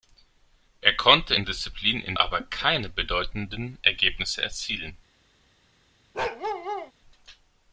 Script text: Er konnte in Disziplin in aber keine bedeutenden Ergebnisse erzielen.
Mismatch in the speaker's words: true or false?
false